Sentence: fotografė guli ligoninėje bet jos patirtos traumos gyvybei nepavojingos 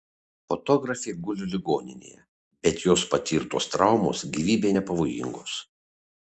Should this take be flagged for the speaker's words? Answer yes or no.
no